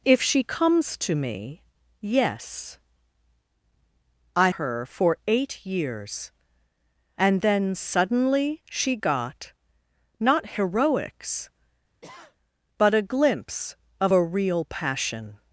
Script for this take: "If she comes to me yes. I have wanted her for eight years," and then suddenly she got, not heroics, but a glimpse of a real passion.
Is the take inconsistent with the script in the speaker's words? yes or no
yes